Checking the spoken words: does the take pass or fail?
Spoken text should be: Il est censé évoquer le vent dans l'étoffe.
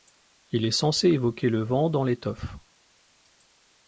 pass